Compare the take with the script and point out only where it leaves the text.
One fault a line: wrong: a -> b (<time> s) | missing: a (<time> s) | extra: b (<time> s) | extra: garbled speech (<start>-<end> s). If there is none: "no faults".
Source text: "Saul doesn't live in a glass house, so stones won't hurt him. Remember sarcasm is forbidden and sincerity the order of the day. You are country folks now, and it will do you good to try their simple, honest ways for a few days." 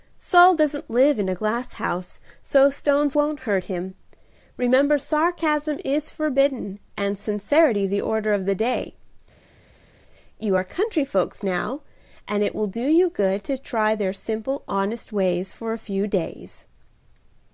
no faults